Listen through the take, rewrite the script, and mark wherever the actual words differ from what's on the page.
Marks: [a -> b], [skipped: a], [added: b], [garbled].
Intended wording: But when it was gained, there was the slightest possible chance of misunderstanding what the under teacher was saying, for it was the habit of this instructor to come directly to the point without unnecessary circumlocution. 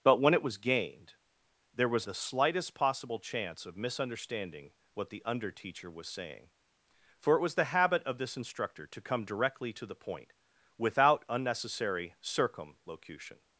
But when it was gained, there was the slightest possible chance of misunderstanding what the under teacher was saying, for it was the habit of this instructor to come directly to the point without unnecessary circumlocution.